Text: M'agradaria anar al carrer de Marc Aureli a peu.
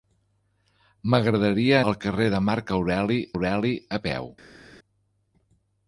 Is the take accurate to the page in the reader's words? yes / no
no